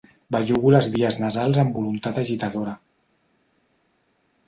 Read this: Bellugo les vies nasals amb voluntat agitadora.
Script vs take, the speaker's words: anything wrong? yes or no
no